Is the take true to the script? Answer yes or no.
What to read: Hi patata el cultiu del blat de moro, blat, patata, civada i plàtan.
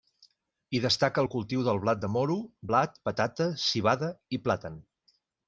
no